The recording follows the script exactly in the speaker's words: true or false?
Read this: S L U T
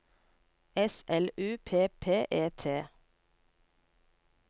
false